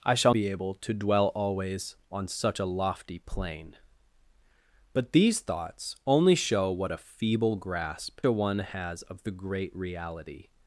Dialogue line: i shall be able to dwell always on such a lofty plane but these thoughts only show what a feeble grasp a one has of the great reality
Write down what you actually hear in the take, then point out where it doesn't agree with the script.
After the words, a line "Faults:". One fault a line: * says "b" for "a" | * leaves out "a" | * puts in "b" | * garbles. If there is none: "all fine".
i shall be able to dwell always on such a lofty plane but these thoughts only show what a feeble grasp a one has of the great reality
Faults:
all fine